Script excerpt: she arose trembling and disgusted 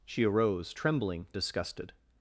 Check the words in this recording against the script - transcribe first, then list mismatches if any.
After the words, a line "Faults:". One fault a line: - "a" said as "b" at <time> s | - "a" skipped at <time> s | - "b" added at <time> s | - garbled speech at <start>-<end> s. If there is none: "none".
she arose trembling disgusted
Faults:
- "and" skipped at 1.3 s